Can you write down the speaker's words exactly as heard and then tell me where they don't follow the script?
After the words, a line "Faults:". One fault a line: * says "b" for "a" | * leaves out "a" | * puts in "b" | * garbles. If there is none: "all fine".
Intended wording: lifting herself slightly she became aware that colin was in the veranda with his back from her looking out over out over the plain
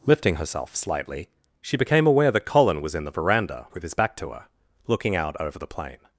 lifting herself slightly she became aware that colin was in the veranda with his back to her looking out over the plain
Faults:
* says "to" for "from"
* leaves out "out over"